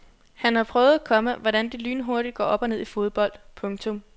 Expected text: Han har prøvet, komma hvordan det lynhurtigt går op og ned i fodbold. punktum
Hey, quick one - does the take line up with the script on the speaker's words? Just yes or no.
yes